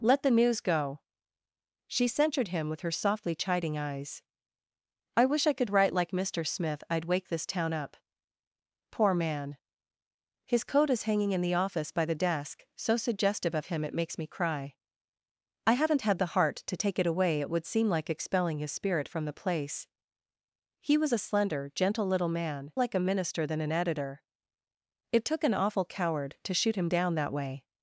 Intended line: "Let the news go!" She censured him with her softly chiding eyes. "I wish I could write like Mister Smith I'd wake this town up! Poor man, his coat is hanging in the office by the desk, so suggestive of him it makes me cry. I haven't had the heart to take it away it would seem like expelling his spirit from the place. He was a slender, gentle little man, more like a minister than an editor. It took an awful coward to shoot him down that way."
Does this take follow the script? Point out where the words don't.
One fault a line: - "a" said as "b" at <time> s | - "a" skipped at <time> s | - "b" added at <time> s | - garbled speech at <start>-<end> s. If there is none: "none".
- "more" skipped at 22.7 s